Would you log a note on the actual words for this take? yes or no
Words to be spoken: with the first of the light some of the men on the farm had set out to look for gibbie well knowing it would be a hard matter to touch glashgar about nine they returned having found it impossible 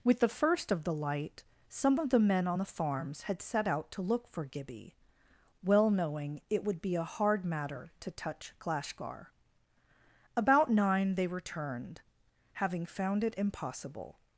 yes